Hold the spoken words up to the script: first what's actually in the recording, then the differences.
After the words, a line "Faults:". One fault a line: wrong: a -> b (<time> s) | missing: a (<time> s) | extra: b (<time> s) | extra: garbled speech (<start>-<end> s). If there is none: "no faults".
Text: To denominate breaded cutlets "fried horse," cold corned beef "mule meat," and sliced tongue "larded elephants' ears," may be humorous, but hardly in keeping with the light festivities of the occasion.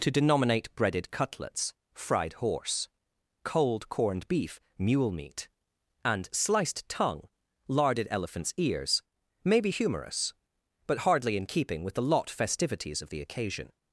To denominate breaded cutlets "fried horse," cold corned beef "mule meat," and sliced tongue "larded elephants' ears," may be humorous, but hardly in keeping with the lot festivities of the occasion.
Faults:
wrong: light -> lot (12.0 s)